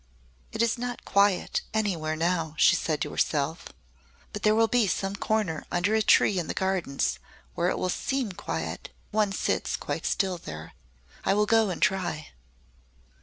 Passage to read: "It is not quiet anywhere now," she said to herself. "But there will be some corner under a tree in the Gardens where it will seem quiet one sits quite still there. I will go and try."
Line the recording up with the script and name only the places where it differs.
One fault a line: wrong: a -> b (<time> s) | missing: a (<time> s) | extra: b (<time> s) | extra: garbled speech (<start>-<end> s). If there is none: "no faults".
no faults